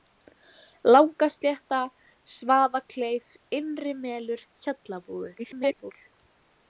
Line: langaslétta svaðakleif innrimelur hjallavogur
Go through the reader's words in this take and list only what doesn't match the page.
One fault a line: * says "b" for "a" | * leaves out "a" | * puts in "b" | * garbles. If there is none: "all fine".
* garbles